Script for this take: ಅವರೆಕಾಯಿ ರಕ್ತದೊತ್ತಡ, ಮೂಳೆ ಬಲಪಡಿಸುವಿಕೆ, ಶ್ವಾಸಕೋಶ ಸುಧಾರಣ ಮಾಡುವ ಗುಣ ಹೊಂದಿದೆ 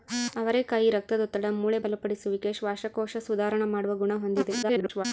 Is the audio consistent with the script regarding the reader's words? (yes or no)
no